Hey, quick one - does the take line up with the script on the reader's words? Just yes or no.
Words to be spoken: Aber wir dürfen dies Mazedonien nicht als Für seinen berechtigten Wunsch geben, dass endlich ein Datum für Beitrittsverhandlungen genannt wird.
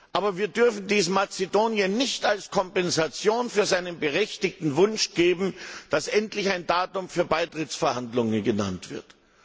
no